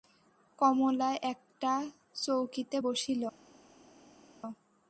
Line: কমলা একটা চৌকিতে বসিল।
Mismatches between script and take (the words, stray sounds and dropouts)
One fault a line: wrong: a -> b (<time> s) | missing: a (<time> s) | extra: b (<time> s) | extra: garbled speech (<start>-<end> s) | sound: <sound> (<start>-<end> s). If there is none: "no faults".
no faults